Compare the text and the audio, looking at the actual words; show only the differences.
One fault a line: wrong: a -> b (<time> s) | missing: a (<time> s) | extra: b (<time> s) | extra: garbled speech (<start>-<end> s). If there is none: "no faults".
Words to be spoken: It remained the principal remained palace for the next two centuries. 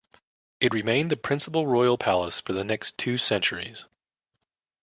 wrong: remained -> royal (1.7 s)